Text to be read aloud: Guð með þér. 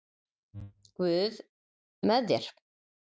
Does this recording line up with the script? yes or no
yes